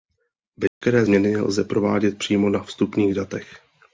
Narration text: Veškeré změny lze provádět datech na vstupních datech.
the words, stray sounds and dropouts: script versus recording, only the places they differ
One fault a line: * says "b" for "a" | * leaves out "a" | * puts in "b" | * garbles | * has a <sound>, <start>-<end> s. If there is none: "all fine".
* has a dropout, 0.7-0.8 s
* says "přímo" for "datech"